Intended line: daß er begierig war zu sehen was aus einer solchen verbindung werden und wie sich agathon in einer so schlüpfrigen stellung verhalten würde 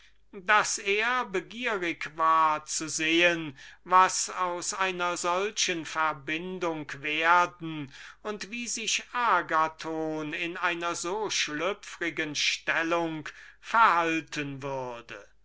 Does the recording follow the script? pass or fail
pass